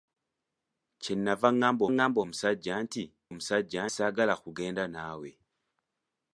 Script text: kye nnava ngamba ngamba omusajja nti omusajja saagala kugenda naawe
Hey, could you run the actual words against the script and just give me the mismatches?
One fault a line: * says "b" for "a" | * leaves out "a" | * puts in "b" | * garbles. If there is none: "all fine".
all fine